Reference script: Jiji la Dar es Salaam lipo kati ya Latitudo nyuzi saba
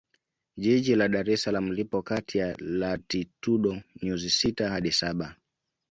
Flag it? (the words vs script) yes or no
yes